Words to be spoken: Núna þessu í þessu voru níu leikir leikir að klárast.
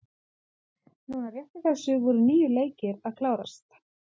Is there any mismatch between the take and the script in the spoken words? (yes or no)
yes